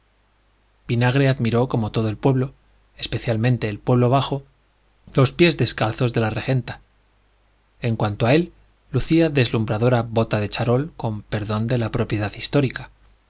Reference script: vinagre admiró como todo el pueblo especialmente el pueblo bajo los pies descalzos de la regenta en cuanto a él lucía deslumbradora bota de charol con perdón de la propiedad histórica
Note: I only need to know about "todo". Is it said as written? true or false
true